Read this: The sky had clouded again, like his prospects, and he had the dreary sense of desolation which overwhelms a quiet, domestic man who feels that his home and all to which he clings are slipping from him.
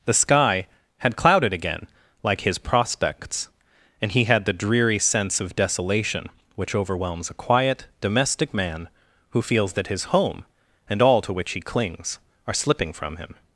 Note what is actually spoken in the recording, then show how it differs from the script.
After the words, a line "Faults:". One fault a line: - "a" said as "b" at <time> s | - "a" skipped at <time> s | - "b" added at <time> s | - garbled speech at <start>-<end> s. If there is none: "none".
The sky had clouded again, like his prospects, and he had the dreary sense of desolation which overwhelms a quiet, domestic man who feels that his home and all to which he clings are slipping from him.
Faults:
none